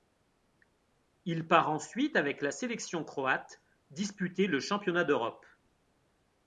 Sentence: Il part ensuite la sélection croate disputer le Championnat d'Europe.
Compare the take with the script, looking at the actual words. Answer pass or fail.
fail